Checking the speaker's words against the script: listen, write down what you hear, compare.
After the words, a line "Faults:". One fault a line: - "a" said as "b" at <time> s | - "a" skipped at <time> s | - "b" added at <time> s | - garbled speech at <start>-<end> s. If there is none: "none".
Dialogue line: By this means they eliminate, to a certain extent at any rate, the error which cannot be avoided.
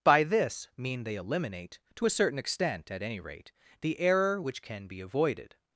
By this mean they eliminate, to a certain extent at any rate, the error which can be avoided.
Faults:
- "means" said as "mean" at 0.8 s
- "cannot" said as "can" at 4.6 s